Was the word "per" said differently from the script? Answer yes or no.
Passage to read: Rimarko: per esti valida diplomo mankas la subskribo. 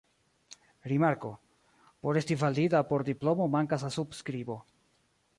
yes